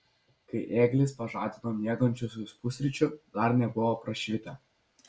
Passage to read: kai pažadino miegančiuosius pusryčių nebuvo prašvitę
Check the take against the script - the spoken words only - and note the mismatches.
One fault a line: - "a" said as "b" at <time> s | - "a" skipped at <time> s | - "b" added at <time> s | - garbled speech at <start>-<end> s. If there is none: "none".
- "ėglis" added at 0.8 s
- "dar" added at 3.4 s